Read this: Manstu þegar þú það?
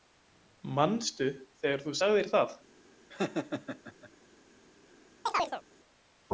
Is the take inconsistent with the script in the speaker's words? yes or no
yes